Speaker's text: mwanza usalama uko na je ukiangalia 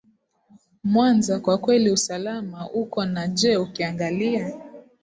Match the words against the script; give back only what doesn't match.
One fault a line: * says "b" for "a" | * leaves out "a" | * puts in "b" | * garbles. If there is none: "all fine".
* puts in "kwa kweli"